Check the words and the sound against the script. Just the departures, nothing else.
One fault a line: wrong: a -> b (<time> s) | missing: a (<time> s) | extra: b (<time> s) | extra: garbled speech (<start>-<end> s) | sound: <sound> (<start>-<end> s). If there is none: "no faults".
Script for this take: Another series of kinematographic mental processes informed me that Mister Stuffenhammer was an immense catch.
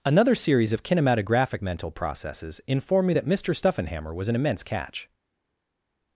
no faults